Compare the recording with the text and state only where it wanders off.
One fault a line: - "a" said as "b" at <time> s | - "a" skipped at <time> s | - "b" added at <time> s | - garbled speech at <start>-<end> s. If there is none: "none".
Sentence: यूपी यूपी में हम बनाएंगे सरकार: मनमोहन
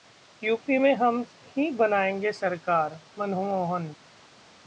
- "यूपी" skipped at 0.8 s
- "ही" added at 1.6 s